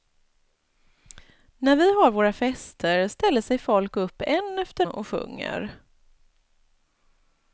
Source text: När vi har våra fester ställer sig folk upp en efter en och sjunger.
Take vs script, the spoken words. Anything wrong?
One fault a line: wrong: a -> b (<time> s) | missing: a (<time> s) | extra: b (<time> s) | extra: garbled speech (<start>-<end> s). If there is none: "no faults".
missing: en (4.8 s)